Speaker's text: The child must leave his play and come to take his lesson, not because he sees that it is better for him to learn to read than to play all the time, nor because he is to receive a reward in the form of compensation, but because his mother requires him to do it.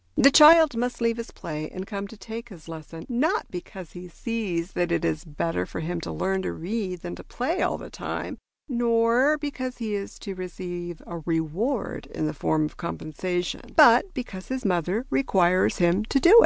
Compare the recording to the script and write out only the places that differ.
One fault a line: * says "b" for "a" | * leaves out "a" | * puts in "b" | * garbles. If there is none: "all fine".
all fine